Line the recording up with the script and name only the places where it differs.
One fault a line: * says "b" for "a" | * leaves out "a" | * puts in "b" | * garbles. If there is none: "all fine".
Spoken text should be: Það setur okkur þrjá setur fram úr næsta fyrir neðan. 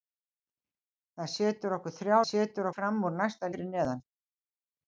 all fine